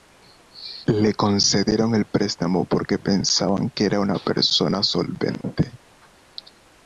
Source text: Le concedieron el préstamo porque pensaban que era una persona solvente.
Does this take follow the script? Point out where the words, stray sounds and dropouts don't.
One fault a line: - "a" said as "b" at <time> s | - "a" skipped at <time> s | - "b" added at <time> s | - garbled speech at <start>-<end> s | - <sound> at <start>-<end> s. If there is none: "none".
none